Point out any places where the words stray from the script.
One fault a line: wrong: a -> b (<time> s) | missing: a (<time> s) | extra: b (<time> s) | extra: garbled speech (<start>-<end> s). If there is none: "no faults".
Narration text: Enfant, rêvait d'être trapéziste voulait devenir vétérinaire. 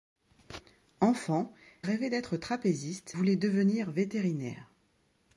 no faults